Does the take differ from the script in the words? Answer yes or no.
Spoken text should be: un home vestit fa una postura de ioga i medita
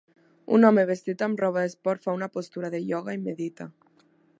yes